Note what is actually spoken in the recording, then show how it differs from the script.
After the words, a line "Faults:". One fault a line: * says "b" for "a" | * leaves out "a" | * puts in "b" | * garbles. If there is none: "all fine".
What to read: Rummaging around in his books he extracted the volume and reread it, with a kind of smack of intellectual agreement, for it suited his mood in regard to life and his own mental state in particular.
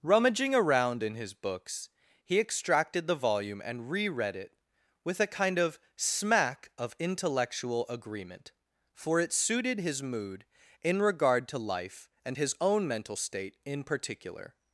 Rummaging around in his books he extracted the volume and reread it, with a kind of smack of intellectual agreement, for it suited his mood in regard to life and his own mental state in particular.
Faults:
all fine